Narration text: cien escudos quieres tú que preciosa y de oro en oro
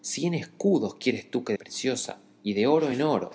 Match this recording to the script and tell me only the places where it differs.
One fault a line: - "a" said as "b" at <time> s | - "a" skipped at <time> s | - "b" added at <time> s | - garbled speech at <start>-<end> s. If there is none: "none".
none